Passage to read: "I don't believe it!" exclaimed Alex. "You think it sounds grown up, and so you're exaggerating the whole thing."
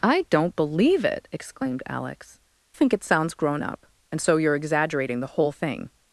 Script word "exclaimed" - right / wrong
right